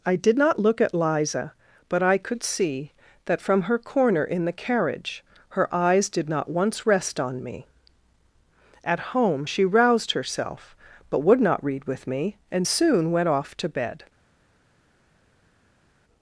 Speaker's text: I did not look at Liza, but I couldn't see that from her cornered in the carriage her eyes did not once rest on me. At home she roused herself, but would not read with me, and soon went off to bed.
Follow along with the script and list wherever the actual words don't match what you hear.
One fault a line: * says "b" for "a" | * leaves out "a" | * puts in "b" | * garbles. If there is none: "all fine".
* says "could" for "couldn't"
* says "corner" for "cornered"